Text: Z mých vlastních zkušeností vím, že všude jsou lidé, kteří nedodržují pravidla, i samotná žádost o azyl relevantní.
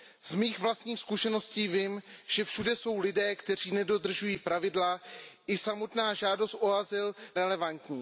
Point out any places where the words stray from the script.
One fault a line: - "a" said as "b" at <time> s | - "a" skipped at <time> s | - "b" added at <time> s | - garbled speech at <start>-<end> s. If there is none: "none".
none